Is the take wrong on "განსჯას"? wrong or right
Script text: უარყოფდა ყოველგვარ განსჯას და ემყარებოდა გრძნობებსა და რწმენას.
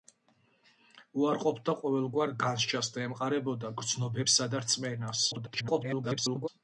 right